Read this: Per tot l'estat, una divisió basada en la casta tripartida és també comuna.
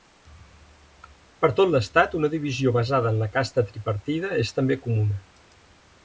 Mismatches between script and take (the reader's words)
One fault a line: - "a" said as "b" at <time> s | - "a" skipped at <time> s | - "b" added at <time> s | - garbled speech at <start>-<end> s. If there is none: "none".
none